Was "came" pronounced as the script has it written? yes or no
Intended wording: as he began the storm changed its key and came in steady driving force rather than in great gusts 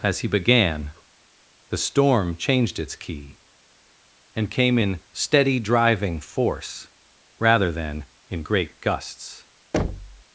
yes